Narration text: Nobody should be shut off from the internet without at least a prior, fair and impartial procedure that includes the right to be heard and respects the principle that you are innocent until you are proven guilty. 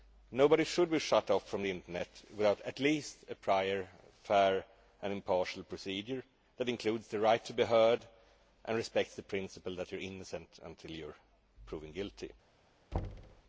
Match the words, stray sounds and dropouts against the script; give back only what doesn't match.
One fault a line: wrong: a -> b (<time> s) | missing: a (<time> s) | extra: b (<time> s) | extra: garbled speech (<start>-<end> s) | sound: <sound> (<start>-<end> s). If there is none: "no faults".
sound: thud (12.9-13.4 s)